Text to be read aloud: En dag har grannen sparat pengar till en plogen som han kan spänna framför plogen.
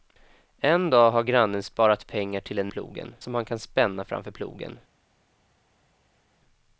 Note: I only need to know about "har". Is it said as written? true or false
true